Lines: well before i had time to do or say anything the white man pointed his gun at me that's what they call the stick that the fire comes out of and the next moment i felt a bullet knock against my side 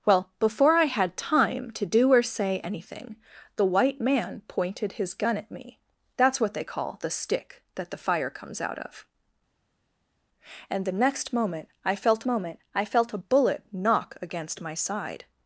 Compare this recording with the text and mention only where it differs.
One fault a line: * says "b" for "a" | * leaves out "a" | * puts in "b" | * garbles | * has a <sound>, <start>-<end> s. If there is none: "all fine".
* puts in "moment i felt"